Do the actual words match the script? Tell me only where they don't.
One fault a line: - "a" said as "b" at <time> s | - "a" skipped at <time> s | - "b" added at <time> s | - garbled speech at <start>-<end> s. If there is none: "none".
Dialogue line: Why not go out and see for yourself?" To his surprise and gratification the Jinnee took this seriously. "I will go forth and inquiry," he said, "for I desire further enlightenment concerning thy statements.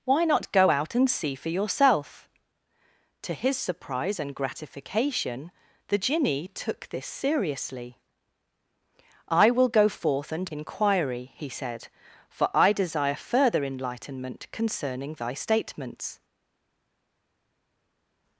none